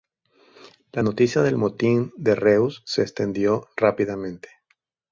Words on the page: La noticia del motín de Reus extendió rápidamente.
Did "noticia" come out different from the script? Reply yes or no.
no